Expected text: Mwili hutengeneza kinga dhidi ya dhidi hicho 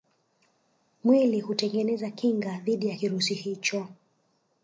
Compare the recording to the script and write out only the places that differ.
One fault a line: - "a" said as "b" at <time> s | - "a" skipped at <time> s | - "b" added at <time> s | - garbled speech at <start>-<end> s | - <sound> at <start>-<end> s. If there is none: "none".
- "dhidi" said as "kirusi" at 2.9 s